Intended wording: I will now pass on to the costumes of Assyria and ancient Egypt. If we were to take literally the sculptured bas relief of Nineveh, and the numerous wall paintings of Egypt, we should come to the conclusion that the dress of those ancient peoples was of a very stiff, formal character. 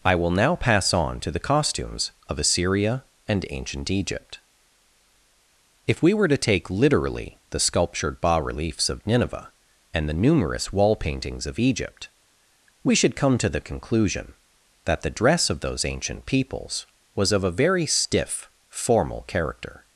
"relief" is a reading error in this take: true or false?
true